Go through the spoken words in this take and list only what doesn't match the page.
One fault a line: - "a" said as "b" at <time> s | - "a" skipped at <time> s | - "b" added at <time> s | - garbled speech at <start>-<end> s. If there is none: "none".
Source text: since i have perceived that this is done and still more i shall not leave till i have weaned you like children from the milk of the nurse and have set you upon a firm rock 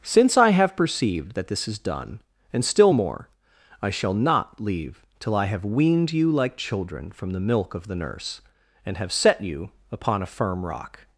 none